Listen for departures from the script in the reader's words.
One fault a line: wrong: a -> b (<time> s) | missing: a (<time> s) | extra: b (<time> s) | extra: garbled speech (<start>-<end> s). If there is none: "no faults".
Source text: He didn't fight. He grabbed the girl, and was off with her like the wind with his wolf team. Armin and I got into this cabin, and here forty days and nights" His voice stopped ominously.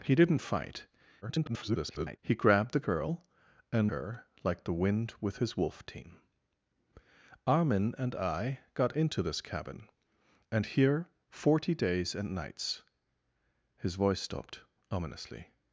extra: garbled speech (1.2-2.2 s)
missing: was off with (3.9 s)